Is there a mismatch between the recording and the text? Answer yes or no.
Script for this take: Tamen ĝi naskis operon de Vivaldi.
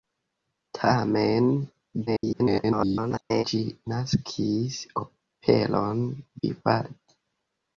yes